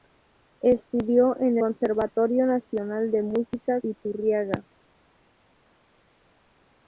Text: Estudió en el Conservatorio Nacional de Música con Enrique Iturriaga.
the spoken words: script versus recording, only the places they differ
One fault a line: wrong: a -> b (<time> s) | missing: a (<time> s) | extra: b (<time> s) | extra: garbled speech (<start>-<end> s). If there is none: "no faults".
missing: el (1.6 s)
missing: con Enrique (3.8 s)